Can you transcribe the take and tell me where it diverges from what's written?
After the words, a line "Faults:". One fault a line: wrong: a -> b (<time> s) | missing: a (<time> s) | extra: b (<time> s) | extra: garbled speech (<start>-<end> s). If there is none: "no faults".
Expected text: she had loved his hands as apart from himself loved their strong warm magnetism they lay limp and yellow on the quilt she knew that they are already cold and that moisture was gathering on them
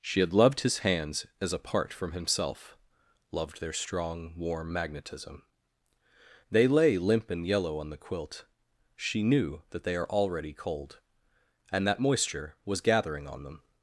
she had loved his hands as apart from himself loved their strong warm magnetism they lay limp and yellow on the quilt she knew that they are already cold and that moisture was gathering on them
Faults:
no faults